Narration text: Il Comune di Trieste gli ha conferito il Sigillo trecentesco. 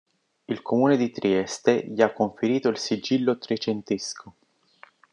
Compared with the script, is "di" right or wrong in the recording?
right